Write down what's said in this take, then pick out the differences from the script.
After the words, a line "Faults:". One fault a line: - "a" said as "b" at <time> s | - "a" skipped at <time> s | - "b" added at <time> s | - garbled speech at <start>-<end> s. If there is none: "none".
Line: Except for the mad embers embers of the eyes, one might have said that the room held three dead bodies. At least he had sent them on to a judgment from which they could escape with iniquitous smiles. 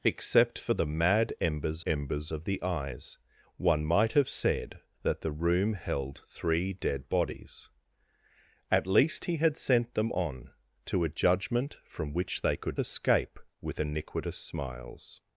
Except for the mad embers embers of the eyes, one might have said that the room held three dead bodies. At least he had sent them on to a judgment from which they could escape with iniquitous smiles.
Faults:
none